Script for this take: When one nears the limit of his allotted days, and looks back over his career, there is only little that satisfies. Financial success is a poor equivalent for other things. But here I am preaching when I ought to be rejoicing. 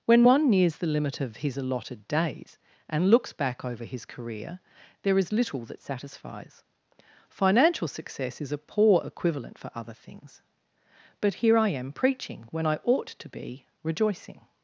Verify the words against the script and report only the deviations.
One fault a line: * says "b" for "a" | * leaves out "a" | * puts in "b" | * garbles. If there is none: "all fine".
* leaves out "only"